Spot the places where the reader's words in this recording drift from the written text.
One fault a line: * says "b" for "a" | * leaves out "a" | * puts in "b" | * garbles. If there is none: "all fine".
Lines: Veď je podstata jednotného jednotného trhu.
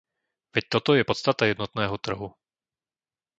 * puts in "toto"
* leaves out "jednotného"